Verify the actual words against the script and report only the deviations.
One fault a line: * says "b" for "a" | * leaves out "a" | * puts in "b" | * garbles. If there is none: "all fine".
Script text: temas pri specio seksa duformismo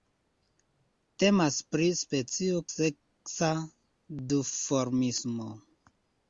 all fine